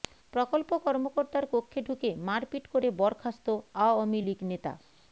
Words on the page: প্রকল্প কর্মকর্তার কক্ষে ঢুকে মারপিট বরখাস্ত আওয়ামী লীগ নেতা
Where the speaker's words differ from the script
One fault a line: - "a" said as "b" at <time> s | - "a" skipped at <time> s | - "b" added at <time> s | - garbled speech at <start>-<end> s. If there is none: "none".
- "করে" added at 2.7 s